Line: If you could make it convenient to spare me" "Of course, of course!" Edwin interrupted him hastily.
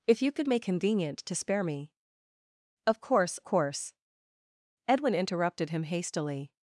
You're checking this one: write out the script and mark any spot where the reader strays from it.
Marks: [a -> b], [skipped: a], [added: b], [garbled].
If you could make [skipped: it] convenient to spare me" "Of course, [skipped: of] course!" Edwin interrupted him hastily.